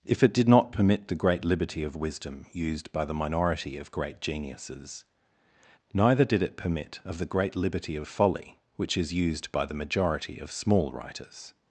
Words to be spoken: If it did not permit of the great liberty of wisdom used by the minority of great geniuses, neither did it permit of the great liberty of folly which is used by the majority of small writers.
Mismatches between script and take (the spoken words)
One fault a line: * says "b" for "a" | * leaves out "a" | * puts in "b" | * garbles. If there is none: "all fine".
* leaves out "of"